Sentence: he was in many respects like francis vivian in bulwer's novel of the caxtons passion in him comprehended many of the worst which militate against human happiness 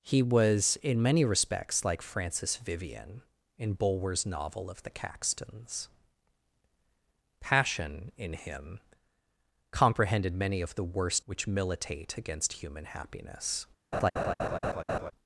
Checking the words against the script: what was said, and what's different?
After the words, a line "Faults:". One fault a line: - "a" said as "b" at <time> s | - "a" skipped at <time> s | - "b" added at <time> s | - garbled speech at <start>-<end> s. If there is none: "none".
he was in many respects like francis vivian in bulwer's novel of the caxtons passion in him comprehended many of the worst which militate against human happiness
Faults:
none